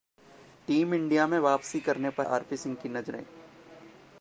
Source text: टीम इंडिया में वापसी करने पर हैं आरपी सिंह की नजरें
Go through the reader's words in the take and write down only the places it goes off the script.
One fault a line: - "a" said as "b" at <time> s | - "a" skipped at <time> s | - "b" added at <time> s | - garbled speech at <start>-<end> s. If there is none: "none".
- "हैं" skipped at 2.3 s